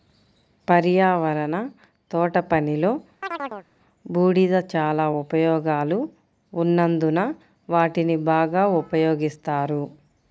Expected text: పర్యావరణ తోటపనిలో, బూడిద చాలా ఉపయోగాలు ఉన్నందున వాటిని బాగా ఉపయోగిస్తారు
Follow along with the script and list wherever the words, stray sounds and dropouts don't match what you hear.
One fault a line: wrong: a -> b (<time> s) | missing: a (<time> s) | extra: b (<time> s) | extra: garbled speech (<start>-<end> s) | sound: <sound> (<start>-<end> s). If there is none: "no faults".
sound: chirp (3.2-3.7 s)